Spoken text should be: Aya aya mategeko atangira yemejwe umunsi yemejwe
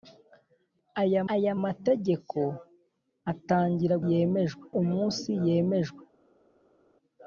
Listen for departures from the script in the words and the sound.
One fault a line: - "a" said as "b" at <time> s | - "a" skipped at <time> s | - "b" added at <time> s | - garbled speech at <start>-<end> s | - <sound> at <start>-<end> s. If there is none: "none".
none